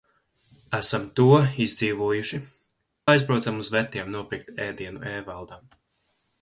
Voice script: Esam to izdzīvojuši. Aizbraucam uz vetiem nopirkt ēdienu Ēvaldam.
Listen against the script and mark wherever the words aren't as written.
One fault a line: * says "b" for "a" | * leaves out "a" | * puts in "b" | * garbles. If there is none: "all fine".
all fine